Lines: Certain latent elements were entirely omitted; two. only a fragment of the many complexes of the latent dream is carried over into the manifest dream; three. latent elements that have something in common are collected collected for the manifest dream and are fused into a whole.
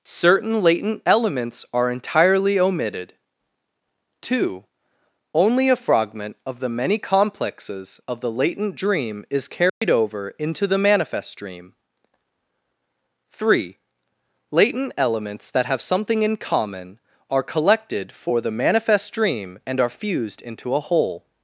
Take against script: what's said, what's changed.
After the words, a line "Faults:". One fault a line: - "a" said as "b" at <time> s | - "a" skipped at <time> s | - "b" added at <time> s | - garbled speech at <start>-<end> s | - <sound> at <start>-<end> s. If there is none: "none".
Certain latent elements are entirely omitted; two. only a fragment of the many complexes of the latent dream is carried over into the manifest dream; three. latent elements that have something in common are collected for the manifest dream and are fused into a whole.
Faults:
- "were" said as "are" at 1.7 s
- dropout at 9.7-9.8 s
- "collected" skipped at 18.1 s